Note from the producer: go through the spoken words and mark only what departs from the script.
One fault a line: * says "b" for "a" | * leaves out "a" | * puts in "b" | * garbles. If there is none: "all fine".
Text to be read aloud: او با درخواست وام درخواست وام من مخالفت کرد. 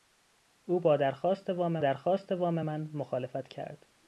all fine